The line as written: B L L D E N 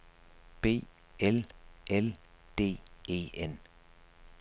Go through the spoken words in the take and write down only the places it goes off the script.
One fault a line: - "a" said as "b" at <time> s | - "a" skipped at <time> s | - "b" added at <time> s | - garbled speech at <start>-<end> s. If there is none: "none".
none